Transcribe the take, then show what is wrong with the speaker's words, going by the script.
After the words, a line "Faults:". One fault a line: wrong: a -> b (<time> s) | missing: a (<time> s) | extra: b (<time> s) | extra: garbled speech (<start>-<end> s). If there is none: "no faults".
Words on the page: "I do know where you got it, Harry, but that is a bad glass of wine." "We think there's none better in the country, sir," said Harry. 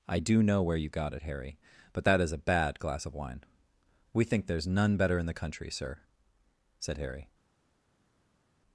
"I do know where you got it, Harry, but that is a bad glass of wine." "We think there's none better in the country, sir," said Harry.
Faults:
no faults